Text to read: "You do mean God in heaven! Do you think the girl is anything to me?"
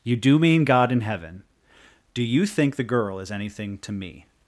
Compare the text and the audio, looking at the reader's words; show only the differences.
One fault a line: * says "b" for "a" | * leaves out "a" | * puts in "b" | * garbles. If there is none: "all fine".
all fine